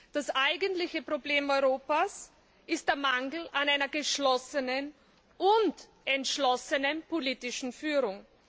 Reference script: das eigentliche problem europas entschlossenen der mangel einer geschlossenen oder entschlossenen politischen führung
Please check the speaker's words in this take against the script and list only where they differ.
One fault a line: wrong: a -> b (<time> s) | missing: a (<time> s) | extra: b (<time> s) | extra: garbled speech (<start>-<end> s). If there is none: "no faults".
wrong: entschlossenen -> ist (2.7 s)
extra: an (3.5 s)
wrong: oder -> und (5.4 s)